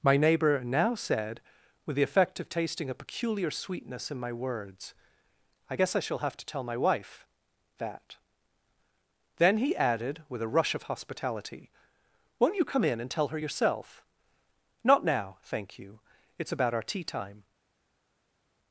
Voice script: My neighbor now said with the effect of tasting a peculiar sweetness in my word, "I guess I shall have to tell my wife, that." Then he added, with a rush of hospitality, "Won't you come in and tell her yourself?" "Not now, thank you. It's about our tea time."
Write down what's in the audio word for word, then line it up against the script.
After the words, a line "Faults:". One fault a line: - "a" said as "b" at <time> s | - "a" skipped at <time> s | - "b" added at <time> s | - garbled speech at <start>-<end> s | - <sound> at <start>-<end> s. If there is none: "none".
My neighbor now said with the effect of tasting a peculiar sweetness in my words, "I guess I shall have to tell my wife, that." Then he added, with a rush of hospitality, "Won't you come in and tell her yourself?" "Not now, thank you. It's about our tea time."
Faults:
- "word" said as "words" at 4.3 s